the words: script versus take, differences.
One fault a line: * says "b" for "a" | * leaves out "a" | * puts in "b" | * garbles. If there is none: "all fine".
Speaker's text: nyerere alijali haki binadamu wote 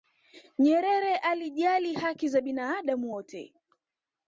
* puts in "za"